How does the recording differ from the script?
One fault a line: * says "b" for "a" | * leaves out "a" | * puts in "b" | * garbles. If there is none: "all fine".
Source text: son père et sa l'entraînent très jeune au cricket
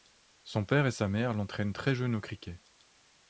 * puts in "mère"